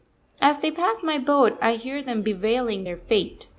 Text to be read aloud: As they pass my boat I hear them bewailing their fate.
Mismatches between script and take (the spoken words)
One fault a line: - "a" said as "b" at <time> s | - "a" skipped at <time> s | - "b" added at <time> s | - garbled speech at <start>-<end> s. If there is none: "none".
none